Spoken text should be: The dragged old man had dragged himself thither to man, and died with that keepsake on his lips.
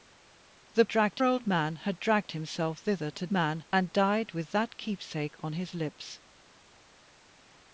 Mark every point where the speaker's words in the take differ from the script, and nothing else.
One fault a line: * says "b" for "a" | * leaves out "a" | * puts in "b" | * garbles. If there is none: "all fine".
all fine